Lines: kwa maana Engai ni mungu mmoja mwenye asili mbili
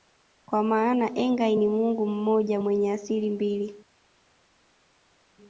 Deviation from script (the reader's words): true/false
false